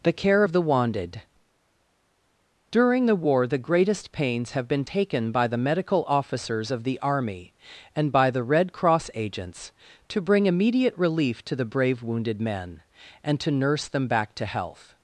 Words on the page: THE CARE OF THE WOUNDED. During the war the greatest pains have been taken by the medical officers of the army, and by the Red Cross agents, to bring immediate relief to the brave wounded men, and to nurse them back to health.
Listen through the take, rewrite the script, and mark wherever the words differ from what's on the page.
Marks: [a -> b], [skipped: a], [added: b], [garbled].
THE CARE OF THE WOUNDED. During the war the greatest pains have been taken by the medical officers of the army, and by the Red Cross agents, to bring immediate relief to the brave wounded men, and to nurse them back to health.